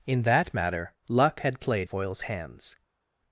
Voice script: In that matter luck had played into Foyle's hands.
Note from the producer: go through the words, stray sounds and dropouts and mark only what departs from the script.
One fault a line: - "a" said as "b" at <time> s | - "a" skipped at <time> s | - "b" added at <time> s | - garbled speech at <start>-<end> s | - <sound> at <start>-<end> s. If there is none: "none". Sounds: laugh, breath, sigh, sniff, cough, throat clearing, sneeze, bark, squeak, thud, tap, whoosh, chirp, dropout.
- "into" skipped at 1.9 s